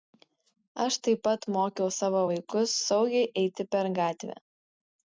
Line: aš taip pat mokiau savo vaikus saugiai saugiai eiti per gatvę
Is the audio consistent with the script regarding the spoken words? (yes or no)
no